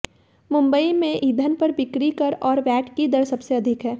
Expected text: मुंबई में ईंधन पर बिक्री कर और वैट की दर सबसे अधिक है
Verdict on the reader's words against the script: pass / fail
pass